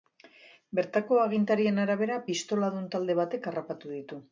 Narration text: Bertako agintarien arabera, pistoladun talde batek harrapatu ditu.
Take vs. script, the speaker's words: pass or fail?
pass